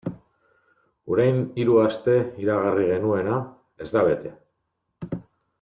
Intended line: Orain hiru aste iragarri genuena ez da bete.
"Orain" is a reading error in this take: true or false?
false